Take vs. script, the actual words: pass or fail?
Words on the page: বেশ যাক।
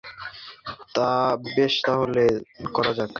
fail